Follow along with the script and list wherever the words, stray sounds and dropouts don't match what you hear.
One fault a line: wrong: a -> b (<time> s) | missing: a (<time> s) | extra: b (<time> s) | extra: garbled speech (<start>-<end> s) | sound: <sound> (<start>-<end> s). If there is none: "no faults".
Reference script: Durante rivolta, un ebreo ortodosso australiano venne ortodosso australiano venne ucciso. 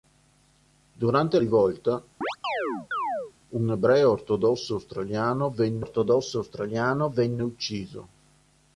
sound: chirp (2.2-3.3 s)